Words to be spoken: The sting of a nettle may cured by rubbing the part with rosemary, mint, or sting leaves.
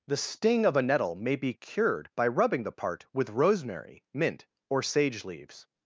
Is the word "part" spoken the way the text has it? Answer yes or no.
yes